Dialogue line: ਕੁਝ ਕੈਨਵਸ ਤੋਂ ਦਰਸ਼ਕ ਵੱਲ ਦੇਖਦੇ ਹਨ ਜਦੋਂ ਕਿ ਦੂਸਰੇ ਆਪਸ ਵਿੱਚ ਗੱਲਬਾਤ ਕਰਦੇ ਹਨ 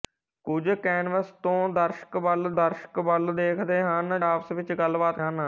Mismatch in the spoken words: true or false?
true